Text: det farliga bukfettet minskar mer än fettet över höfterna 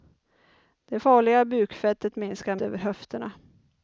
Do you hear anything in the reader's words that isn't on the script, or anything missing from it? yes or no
yes